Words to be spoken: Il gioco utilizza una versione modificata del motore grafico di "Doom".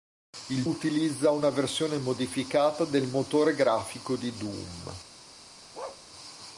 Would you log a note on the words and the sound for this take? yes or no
yes